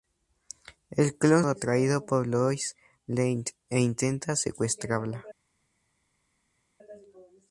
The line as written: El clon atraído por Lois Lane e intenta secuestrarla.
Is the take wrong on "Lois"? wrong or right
right